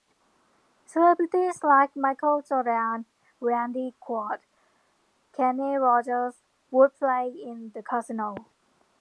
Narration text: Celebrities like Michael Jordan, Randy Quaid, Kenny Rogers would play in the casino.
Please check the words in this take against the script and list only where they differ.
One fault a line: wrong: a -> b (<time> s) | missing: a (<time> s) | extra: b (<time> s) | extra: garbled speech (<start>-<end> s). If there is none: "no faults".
no faults